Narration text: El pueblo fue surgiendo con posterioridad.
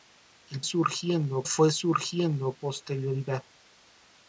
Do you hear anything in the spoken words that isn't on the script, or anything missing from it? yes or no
yes